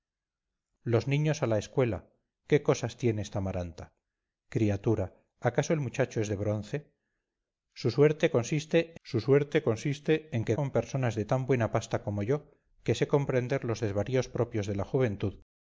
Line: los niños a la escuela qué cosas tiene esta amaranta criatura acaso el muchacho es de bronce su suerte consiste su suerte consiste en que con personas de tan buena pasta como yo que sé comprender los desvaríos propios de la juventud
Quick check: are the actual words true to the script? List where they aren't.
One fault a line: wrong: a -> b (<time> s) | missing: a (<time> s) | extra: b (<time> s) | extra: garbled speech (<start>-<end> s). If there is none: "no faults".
no faults